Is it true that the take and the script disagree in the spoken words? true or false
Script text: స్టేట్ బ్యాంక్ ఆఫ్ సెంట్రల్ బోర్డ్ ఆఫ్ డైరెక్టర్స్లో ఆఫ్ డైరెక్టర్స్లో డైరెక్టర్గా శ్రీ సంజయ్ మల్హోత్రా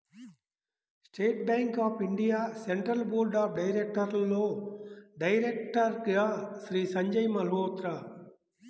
true